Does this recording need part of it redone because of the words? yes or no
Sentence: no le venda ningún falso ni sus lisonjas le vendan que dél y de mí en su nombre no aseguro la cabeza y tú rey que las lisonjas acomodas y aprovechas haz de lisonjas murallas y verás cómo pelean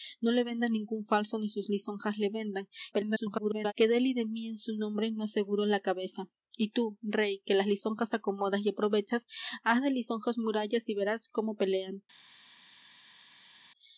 yes